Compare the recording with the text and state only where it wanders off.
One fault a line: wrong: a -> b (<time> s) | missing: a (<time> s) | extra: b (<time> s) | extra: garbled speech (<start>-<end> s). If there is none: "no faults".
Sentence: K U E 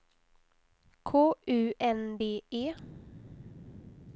extra: N D (1.8 s)